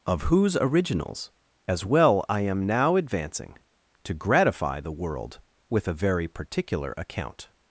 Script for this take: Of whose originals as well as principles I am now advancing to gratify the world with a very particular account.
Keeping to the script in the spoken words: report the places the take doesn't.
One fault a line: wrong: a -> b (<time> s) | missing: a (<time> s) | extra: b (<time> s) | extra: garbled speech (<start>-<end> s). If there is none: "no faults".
missing: as principles (2.2 s)